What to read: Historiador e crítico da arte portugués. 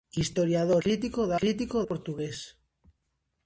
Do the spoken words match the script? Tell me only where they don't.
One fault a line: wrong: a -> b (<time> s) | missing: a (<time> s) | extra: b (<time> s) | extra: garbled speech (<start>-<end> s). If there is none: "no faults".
missing: e (0.8 s)
wrong: arte -> crítico (1.3 s)